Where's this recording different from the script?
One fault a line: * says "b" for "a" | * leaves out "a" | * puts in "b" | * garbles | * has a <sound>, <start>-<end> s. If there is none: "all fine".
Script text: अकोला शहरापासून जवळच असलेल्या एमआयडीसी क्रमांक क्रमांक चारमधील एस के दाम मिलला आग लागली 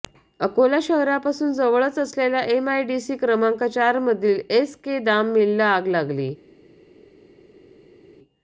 * leaves out "क्रमांक"